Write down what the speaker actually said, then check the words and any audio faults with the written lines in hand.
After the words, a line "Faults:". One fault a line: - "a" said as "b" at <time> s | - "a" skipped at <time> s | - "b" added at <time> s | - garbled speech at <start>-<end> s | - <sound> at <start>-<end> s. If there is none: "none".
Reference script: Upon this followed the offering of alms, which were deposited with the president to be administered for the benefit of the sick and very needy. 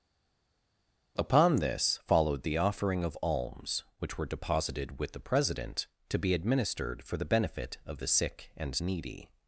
Upon this followed the offering of alms, which were deposited with the president to be administered for the benefit of the sick and needy.
Faults:
- "very" skipped at 8.8 s